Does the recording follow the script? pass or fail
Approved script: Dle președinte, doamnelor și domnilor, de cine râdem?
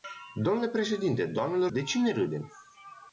fail